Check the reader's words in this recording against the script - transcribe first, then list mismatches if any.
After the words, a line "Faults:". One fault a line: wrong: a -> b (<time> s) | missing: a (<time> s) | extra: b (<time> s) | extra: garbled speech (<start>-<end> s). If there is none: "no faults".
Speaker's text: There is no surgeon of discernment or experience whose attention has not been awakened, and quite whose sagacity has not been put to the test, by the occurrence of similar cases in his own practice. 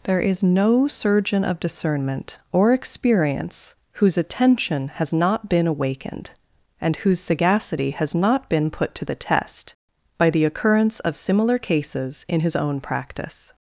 There is no surgeon of discernment or experience whose attention has not been awakened, and whose sagacity has not been put to the test, by the occurrence of similar cases in his own practice.
Faults:
missing: quite (6.9 s)